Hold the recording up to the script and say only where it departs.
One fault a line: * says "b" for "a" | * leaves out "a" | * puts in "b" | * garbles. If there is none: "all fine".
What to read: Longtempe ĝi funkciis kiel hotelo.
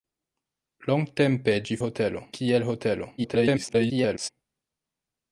* says "hotelo" for "funkciis"
* garbles